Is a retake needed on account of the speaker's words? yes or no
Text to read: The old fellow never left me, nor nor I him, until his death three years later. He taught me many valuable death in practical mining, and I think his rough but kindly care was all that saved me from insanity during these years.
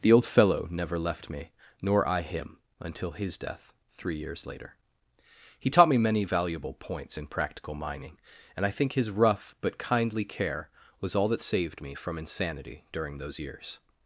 yes